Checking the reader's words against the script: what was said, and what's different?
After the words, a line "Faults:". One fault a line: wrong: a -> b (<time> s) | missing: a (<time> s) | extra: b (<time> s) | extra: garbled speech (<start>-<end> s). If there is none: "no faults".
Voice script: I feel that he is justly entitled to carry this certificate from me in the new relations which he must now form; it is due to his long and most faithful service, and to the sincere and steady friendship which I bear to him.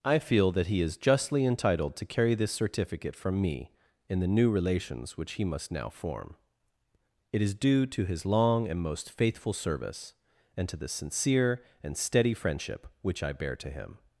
I feel that he is justly entitled to carry this certificate from me in the new relations which he must now form; it is due to his long and most faithful service, and to the sincere and steady friendship which I bear to him.
Faults:
no faults